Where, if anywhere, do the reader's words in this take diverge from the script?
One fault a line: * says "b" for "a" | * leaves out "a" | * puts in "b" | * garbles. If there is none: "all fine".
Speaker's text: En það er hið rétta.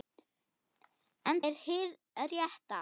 * leaves out "það"